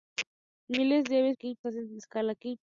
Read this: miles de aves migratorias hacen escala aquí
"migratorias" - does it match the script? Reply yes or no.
no